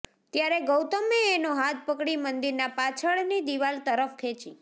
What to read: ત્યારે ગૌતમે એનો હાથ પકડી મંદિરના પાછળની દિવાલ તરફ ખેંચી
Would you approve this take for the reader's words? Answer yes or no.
yes